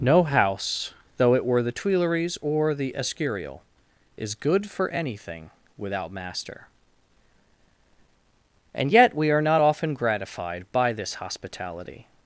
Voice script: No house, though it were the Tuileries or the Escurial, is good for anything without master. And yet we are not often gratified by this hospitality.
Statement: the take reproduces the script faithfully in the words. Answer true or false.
true